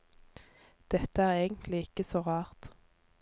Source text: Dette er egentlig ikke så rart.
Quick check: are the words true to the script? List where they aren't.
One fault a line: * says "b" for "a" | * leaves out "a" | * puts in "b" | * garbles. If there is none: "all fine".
all fine